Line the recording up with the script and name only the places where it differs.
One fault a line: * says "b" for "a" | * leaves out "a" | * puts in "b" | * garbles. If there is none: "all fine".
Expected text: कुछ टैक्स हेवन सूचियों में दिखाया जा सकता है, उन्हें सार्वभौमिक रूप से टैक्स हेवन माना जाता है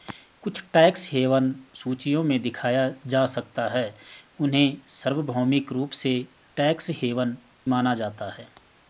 all fine